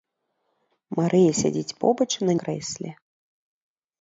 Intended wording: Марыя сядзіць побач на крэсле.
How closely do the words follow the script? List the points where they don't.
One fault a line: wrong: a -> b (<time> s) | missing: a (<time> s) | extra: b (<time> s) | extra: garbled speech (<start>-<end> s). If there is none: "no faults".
no faults